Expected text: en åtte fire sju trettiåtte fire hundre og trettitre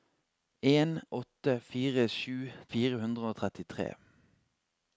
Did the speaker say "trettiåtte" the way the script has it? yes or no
no